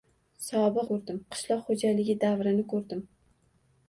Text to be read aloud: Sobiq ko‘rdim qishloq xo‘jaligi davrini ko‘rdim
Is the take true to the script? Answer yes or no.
yes